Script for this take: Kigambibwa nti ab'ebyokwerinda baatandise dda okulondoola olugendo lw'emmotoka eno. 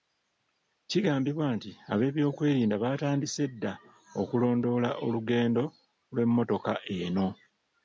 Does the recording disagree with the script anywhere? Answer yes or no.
no